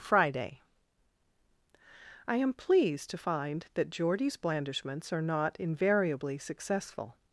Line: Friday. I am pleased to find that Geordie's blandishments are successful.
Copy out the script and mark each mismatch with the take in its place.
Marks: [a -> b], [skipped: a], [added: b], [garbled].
Friday. I am pleased to find that Geordie's blandishments are [added: not invariably] successful.